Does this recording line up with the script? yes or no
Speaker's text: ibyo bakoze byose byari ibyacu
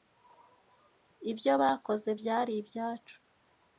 no